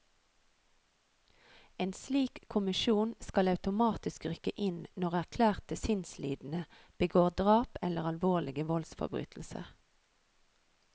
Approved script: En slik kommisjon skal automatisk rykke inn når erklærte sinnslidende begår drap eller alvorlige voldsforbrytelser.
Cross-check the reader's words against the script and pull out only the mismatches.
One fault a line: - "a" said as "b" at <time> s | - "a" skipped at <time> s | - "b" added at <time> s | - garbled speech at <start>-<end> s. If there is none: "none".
none